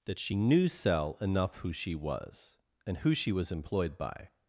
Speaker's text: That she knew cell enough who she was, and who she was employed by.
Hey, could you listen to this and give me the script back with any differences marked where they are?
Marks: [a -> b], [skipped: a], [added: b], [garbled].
That she knew cell enough who she was, and who she was employed by.